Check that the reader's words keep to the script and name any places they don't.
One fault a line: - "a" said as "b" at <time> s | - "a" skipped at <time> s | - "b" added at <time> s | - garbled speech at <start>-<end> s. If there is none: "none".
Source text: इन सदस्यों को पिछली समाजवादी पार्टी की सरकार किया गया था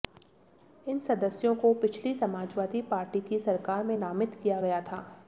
- "में नामित" added at 3.8 s